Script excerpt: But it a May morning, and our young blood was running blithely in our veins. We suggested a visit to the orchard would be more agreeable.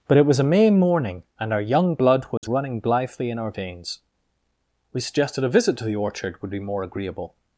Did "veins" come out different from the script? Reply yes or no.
no